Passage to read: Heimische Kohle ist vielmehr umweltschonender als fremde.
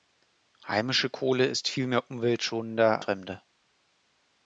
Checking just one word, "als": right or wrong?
wrong